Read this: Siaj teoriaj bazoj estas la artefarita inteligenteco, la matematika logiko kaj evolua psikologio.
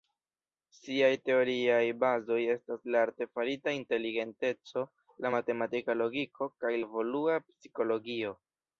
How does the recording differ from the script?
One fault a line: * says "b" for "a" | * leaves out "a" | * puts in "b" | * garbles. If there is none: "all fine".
all fine